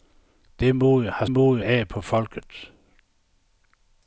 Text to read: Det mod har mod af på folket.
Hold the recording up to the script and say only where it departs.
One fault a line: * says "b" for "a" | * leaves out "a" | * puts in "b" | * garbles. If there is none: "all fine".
all fine